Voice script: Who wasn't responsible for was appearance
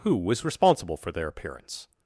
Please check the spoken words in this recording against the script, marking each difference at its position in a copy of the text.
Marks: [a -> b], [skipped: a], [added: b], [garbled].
Who [wasn't -> was] responsible for [was -> their] appearance